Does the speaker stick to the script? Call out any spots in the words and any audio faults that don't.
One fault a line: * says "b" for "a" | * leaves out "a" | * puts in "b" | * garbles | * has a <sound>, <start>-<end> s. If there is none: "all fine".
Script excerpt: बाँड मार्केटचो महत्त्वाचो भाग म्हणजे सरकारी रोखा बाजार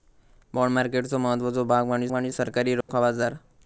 * puts in "म्हणजे"
* has a dropout, 2.8-2.9 s